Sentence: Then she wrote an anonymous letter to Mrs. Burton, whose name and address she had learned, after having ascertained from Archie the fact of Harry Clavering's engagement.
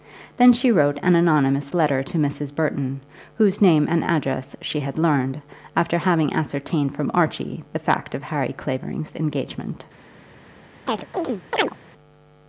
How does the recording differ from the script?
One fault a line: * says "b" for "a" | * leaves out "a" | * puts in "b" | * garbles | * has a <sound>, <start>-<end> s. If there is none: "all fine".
* has a chirp, 10.9-11.8 s